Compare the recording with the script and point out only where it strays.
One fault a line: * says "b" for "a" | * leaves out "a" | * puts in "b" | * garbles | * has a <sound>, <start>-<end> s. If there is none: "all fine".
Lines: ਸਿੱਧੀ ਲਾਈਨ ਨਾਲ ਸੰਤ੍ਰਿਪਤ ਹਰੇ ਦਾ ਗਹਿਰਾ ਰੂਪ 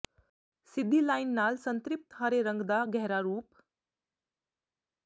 * puts in "ਰੰਗ"